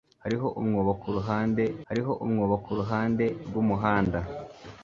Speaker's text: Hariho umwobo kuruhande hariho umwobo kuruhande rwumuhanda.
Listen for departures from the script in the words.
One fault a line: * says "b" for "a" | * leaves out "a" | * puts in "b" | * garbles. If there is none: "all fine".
all fine